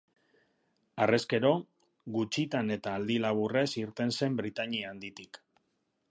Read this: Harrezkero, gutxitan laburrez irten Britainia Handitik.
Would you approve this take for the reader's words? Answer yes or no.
no